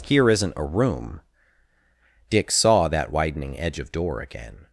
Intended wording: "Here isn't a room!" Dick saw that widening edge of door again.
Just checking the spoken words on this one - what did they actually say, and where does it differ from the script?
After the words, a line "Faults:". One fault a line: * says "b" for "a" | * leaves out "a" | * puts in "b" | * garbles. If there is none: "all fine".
"Here isn't a room!" Dick saw that widening edge of door again.
Faults:
all fine